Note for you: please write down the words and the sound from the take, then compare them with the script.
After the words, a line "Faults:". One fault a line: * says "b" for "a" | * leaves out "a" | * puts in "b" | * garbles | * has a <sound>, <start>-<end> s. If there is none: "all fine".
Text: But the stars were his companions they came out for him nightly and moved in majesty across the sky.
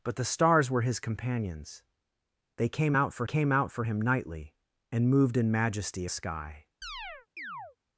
But the stars were his companions they came out for came out for him nightly and moved in majesty sky.
Faults:
* puts in "came out for"
* leaves out "across the"
* has a chirp, 6.8-7.8 s